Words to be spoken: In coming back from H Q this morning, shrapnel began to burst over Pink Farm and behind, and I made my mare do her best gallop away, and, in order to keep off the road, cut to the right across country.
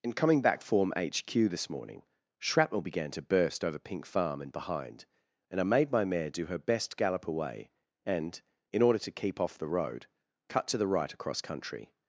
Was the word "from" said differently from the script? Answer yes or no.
yes